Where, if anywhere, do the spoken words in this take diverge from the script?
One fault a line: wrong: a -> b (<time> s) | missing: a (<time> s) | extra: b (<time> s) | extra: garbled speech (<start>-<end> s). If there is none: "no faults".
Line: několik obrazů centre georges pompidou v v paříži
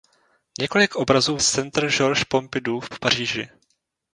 no faults